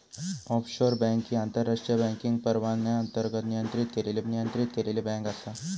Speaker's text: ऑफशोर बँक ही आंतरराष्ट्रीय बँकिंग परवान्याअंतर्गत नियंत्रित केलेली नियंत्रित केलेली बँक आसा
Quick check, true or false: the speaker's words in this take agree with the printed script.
true